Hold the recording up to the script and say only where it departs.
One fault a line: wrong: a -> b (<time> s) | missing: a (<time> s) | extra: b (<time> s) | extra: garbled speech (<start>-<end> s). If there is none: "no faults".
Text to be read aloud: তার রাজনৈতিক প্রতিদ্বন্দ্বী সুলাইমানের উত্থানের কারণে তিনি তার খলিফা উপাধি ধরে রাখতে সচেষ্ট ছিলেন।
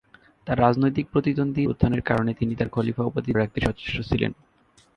missing: সুলাইমানের (1.6 s)
missing: ধরে (3.3 s)